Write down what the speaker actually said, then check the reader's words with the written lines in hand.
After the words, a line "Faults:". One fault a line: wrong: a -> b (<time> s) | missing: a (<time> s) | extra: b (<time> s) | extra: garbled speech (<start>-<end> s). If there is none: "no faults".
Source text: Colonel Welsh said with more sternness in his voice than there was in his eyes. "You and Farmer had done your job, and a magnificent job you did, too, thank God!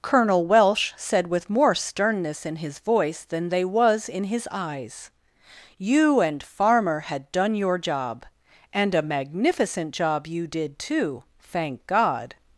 Colonel Welsh said with more sternness in his voice than they was in his eyes. "You and Farmer had done your job, and a magnificent job you did, too, thank God!
Faults:
wrong: there -> they (3.5 s)